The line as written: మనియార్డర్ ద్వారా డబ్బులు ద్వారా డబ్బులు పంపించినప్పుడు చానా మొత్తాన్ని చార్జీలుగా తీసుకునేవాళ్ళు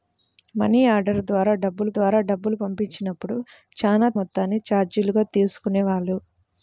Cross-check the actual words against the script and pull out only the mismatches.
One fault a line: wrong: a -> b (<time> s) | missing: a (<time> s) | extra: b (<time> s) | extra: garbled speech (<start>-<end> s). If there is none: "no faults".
no faults